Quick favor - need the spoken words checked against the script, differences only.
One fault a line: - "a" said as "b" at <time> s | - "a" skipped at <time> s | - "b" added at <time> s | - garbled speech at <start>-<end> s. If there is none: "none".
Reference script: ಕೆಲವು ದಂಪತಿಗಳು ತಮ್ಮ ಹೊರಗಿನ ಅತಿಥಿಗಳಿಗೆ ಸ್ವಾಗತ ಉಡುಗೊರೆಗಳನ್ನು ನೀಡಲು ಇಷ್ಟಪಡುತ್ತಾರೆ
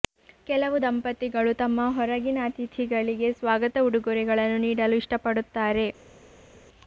none